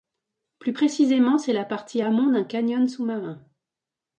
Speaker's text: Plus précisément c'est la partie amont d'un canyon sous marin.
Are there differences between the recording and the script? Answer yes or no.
no